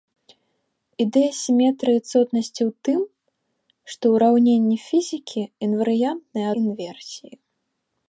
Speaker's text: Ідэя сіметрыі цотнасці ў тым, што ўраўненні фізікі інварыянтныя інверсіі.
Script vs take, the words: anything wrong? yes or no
no